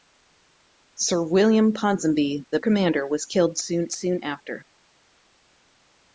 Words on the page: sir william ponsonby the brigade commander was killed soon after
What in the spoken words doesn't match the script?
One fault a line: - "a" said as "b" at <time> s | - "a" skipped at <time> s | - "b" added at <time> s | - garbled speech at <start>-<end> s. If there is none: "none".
- "brigade" skipped at 2.6 s
- "soon" added at 3.9 s